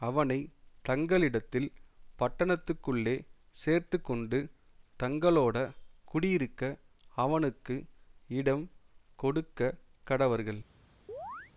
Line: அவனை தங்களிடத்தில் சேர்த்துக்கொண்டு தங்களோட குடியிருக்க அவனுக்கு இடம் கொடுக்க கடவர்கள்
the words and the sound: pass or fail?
fail